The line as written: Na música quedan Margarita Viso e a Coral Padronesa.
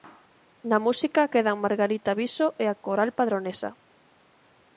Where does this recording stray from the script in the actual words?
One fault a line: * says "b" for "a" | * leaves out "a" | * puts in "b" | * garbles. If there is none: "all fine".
all fine